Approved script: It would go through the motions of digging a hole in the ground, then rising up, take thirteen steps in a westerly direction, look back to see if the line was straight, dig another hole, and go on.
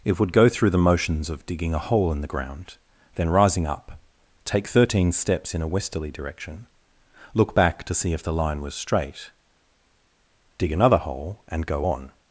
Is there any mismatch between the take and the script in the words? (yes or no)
no